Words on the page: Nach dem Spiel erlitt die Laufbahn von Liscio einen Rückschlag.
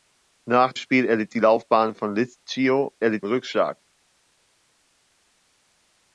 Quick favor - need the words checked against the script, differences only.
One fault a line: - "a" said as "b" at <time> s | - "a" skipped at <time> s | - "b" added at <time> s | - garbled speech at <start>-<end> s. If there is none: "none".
- "dem" skipped at 0.7 s
- "einen" said as "erlitt" at 3.0 s